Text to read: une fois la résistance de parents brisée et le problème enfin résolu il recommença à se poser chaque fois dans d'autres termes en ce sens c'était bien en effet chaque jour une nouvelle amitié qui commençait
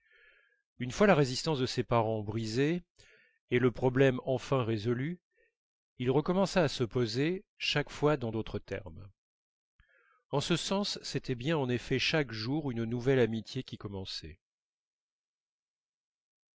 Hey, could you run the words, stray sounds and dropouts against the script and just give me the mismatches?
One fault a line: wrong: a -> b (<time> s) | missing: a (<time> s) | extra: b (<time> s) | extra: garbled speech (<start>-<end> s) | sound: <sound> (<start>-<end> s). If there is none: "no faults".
extra: ses (1.7 s)